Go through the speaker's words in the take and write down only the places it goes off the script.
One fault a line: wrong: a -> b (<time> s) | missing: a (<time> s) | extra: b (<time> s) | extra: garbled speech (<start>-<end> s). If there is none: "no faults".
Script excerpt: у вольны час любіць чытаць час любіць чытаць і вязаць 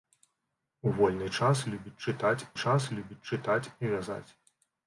no faults